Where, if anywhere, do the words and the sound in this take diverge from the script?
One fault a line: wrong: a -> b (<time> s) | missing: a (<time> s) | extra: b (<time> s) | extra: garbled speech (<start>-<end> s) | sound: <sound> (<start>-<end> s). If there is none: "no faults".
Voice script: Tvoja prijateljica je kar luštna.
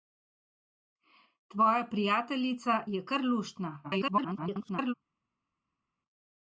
extra: garbled speech (3.8-4.9 s)